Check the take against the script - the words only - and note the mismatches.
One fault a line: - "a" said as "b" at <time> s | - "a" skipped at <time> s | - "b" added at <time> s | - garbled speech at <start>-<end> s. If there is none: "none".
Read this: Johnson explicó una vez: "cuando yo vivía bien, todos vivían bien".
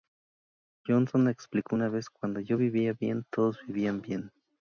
none